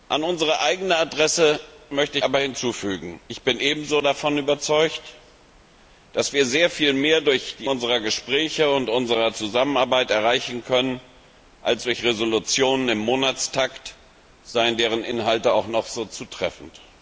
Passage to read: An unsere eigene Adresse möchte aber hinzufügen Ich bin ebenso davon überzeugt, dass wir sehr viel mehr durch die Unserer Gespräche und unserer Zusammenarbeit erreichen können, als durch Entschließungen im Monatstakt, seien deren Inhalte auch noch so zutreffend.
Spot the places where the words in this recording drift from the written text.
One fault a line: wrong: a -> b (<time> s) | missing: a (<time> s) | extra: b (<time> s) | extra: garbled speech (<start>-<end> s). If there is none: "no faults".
no faults